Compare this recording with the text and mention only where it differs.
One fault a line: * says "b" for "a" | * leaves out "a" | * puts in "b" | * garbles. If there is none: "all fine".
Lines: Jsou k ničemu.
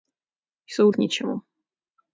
all fine